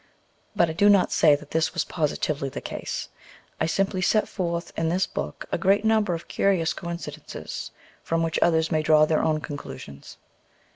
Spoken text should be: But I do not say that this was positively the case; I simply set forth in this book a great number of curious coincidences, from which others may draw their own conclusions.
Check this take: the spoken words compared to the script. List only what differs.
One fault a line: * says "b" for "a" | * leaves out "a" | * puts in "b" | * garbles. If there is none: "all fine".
all fine